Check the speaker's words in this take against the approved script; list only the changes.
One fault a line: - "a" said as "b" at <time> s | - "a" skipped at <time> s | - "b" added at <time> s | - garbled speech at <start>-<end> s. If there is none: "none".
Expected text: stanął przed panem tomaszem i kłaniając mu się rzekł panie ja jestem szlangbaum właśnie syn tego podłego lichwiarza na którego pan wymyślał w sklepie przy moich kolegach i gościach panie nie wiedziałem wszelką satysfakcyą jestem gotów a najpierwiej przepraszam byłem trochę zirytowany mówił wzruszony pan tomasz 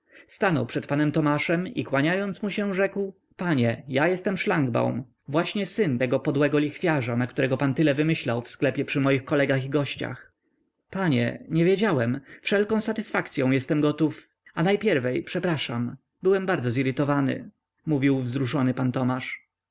- "tyle" added at 7.7 s
- "trochę" said as "bardzo" at 16.5 s